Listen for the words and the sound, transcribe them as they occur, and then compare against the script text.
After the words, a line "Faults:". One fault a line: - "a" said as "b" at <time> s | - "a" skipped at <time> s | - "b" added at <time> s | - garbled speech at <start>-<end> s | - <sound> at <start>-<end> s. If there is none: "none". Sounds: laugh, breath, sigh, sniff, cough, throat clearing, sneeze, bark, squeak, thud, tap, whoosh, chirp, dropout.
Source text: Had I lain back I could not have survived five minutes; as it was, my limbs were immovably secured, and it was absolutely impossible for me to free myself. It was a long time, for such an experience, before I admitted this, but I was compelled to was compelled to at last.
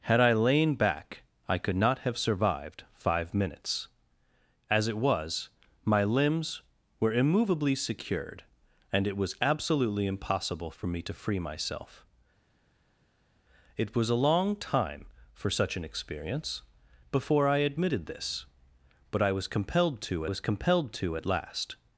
Had I lain back I could not have survived five minutes; as it was, my limbs were immovably secured, and it was absolutely impossible for me to free myself. It was a long time, for such an experience, before I admitted this, but I was compelled to was compelled to at last.
Faults:
none